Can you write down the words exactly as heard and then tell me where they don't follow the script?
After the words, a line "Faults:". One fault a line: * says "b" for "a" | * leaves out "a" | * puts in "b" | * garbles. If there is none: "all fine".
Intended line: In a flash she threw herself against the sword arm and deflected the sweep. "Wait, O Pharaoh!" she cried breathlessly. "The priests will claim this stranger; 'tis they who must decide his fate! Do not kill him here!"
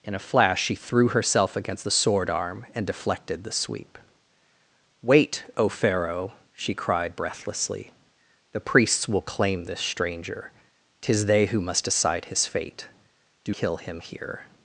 In a flash she threw herself against the sword arm and deflected the sweep. "Wait, O Pharaoh!" she cried breathlessly. "The priests will claim this stranger; 'tis they who must decide his fate! Do kill him here!"
Faults:
* leaves out "not"